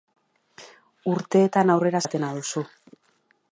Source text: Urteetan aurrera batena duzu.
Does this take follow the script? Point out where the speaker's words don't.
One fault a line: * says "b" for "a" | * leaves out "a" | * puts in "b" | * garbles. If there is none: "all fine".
all fine